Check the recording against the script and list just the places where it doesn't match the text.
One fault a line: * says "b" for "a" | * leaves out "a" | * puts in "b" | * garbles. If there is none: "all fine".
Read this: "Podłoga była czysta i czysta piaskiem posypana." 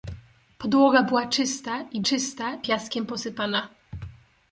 all fine